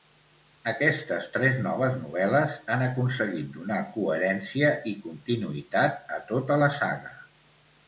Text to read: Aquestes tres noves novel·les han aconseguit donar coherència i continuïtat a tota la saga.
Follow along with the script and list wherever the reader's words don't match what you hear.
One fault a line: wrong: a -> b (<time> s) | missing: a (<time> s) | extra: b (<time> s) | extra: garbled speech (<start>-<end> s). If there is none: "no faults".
no faults